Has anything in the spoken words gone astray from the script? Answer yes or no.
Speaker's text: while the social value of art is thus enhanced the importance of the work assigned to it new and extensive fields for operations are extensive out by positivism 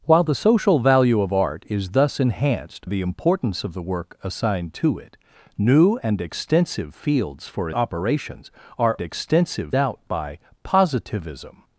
no